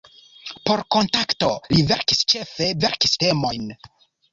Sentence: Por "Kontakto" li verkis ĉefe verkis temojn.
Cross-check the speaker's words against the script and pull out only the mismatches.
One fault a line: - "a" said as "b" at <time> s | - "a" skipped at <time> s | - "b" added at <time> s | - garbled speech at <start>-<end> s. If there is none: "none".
none